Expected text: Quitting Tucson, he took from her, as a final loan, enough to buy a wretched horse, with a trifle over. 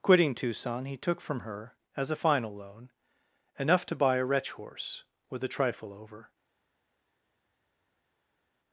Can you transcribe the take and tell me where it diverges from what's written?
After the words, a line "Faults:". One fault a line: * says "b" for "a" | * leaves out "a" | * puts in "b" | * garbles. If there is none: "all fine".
Quitting Tucson, he took from her, as a final loan, enough to buy a wretch horse, with a trifle over.
Faults:
* says "wretch" for "wretched"